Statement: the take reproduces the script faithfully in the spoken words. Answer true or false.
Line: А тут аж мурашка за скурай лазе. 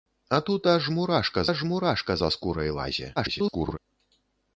false